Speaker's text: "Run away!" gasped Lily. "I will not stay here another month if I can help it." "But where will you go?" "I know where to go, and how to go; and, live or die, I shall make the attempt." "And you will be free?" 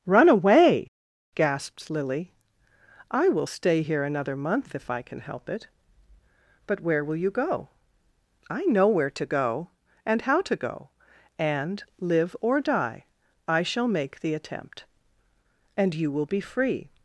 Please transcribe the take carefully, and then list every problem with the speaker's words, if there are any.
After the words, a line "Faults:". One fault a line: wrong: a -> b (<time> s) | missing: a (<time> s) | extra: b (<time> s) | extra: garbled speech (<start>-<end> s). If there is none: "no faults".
"Run away!" gasped Lily. "I will stay here another month if I can help it." "But where will you go?" "I know where to go, and how to go; and, live or die, I shall make the attempt." "And you will be free?"
Faults:
missing: not (3.5 s)